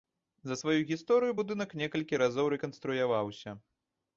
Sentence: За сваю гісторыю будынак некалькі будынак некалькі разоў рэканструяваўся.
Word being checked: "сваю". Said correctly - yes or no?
yes